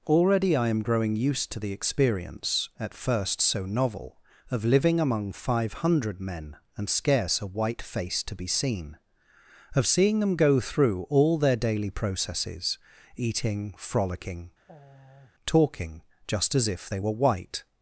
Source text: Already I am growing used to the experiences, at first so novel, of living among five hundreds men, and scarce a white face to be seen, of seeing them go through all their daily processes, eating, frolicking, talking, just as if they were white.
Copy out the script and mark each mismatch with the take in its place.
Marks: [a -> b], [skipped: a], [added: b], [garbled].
Already I am growing used to the [experiences, -> experience] at first so novel, of living among five [hundreds -> hundred] men, and scarce a white face to be seen, of seeing them go through all their daily processes, eating, frolicking, talking, just as if they were white.